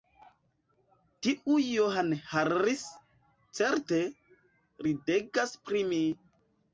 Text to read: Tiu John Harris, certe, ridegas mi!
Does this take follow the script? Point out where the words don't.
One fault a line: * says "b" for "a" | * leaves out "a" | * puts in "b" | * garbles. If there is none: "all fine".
* puts in "pri"